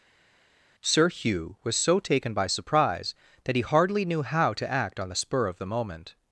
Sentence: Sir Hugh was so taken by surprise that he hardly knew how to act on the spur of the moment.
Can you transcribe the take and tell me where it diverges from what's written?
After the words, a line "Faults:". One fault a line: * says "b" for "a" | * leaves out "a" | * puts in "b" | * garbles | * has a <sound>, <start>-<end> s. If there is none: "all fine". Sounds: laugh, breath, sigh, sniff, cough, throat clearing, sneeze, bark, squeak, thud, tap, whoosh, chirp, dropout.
Sir Hugh was so taken by surprise that he hardly knew how to act on the spur of the moment.
Faults:
all fine